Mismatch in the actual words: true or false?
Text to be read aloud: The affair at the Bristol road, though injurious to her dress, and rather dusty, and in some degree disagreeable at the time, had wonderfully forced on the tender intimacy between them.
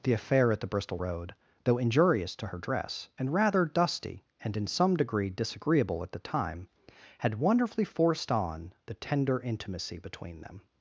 false